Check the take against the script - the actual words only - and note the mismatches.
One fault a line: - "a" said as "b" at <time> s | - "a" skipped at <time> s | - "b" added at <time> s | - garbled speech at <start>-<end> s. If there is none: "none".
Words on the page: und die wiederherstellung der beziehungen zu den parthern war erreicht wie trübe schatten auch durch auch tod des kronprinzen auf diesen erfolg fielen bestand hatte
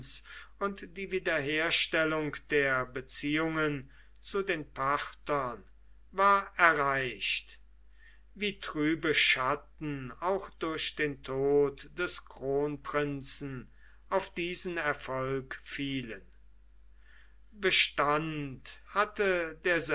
- "auch" said as "den" at 10.9 s